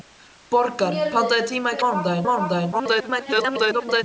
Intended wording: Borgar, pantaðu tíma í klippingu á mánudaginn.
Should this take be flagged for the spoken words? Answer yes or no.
yes